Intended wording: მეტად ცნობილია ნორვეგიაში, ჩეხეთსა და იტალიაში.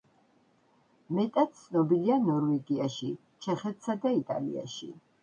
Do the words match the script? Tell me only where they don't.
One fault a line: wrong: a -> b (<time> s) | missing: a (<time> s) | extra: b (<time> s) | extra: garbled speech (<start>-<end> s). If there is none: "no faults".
no faults